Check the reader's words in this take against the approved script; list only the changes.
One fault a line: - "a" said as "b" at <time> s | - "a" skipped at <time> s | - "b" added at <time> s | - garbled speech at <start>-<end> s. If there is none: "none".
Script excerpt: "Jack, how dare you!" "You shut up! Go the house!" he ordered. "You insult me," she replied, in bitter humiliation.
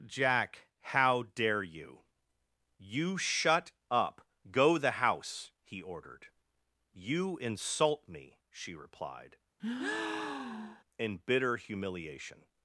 none